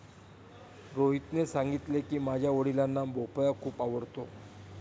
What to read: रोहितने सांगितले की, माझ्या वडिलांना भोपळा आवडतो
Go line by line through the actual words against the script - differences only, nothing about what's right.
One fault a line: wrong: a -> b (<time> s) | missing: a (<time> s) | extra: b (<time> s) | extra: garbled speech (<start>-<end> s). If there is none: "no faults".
extra: खूप (3.6 s)